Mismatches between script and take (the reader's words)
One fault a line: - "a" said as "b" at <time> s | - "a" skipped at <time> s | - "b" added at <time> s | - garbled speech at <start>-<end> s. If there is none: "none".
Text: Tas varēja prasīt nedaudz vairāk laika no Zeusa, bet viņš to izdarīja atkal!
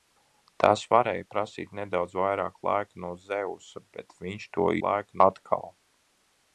- "izdarīja" said as "laika" at 4.9 s